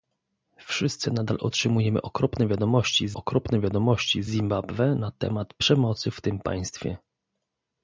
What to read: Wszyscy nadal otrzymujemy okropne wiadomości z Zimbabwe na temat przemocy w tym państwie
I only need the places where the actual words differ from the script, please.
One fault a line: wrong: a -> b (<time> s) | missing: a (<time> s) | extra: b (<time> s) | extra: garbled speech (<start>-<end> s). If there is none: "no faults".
extra: okropne wiadomości z (3.1 s)